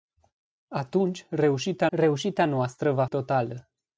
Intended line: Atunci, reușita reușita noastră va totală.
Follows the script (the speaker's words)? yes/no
yes